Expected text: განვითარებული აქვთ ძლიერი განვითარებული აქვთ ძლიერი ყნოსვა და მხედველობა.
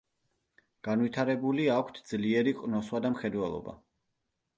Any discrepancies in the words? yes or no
yes